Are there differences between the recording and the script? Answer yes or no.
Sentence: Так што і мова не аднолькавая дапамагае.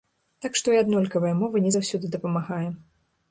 yes